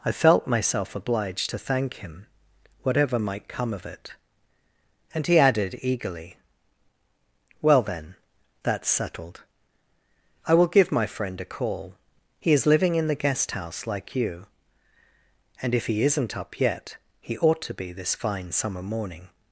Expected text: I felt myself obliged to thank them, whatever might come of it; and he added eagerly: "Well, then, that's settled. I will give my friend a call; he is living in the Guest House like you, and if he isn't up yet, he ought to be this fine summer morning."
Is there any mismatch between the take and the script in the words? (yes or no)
yes